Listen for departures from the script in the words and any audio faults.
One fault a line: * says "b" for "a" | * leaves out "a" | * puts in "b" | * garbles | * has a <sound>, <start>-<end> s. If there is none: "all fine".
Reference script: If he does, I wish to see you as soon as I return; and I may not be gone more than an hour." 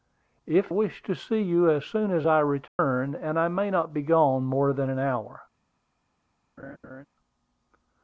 * leaves out "he does I"
* has a dropout, 2.7-2.8 s
* has a laugh, 6.6-7.1 s